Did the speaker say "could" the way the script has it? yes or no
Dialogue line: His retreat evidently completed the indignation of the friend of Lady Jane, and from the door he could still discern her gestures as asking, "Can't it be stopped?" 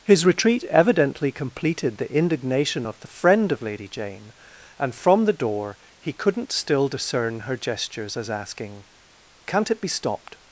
no